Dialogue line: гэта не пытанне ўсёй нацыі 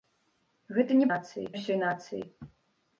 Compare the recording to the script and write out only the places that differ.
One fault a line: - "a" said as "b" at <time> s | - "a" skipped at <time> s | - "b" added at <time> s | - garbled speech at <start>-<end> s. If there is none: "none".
- "пытанне" said as "нацыі" at 1.1 s